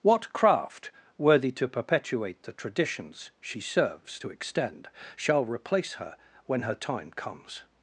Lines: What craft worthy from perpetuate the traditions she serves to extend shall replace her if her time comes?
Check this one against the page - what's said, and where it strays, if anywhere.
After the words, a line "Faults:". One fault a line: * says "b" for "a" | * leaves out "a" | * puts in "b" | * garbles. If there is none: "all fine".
What craft worthy to perpetuate the traditions she serves to extend shall replace her when her time comes?
Faults:
* says "to" for "from"
* says "when" for "if"